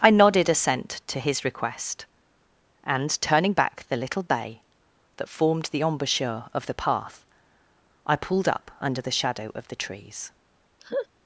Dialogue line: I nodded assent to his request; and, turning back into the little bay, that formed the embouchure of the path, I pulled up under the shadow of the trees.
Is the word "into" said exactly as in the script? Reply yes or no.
no